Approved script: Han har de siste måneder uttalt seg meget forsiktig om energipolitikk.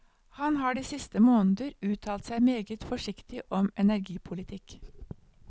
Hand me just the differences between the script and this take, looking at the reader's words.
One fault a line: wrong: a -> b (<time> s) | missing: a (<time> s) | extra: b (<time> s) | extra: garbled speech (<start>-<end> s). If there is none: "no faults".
no faults